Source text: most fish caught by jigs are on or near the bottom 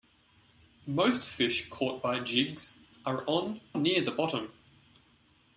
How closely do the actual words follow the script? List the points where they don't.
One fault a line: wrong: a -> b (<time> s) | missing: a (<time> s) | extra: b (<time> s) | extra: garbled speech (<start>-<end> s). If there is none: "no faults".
missing: or (3.6 s)